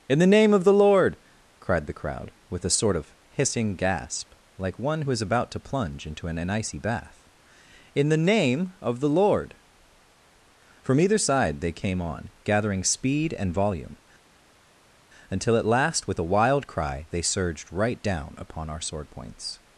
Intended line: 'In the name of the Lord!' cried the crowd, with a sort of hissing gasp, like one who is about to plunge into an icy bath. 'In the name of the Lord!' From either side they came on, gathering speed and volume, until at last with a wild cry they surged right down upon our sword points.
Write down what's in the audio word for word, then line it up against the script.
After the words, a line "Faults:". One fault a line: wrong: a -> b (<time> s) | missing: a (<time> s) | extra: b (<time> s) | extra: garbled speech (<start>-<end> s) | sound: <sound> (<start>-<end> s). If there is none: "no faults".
'In the name of the Lord!' cried the crowd, with a sort of hissing gasp, like one who is about to plunge into an an icy bath. 'In the name of the Lord!' From either side they came on, gathering speed and volume, until at last with a wild cry they surged right down upon our sword points.
Faults:
extra: an (6.4 s)